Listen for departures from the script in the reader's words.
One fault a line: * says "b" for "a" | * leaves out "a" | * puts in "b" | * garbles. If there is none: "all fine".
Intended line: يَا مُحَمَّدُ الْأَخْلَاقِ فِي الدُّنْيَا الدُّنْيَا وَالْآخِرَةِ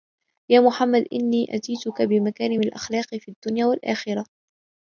* puts in "إنِّي أَتَيْتُك بِمَكَارِمِ"
* leaves out "الدُّنْيَا"